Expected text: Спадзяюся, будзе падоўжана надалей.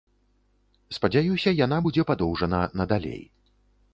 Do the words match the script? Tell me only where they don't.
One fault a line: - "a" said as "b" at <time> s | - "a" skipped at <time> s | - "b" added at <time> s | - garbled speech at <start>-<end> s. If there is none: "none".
- "яна" added at 1.6 s